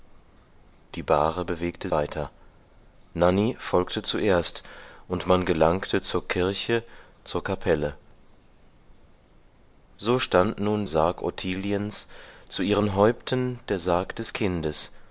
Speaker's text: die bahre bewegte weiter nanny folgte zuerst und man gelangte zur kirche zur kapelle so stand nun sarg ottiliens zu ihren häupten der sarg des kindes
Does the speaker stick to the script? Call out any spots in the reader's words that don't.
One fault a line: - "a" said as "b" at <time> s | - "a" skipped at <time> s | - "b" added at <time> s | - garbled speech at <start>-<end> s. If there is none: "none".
none